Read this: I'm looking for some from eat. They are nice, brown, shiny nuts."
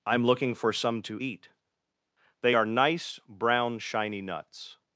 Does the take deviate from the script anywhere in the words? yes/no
yes